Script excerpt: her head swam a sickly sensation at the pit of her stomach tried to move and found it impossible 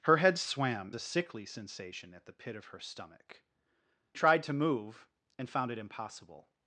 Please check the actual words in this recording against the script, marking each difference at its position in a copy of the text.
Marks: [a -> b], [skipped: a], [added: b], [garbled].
her head swam a sickly sensation at the pit of her stomach tried to move and found it impossible